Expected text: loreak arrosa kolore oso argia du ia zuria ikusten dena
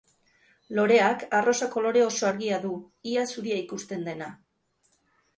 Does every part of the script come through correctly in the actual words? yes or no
yes